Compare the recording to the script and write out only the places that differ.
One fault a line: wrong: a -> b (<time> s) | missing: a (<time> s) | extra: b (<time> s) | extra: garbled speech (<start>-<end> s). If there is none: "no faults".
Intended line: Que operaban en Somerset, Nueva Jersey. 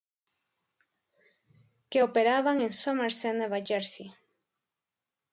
no faults